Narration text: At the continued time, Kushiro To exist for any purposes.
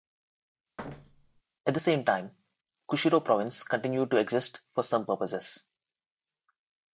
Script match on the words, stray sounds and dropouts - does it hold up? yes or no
no